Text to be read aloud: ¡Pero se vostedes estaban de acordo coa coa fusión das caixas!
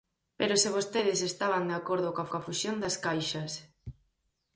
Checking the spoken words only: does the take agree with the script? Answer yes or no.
yes